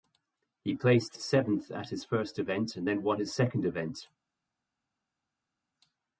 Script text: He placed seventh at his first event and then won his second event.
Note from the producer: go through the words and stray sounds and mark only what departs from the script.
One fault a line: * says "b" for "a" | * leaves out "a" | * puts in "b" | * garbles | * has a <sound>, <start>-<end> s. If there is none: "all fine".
all fine